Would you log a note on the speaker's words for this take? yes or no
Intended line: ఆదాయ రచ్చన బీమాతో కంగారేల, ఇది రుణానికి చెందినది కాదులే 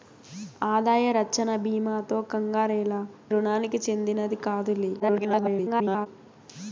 yes